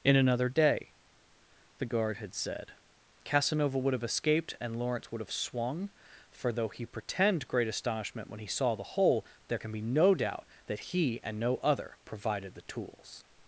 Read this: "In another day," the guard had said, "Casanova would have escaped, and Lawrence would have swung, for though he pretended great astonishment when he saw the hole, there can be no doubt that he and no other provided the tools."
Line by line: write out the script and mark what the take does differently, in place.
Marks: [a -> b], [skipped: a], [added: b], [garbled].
"In another day," the guard had said, "Casanova would have escaped, and Lawrence would have swung, for though he [pretended -> pretend] great astonishment when he saw the hole, there can be no doubt that he and no other provided the tools."